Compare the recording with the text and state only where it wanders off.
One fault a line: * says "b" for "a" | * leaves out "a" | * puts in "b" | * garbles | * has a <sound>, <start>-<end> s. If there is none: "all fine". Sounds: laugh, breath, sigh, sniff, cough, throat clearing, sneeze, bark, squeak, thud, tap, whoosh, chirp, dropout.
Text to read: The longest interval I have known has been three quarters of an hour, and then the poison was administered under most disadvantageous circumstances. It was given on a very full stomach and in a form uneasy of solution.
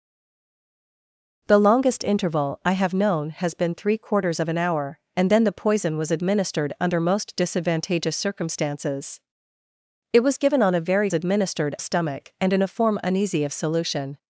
* says "administered" for "full"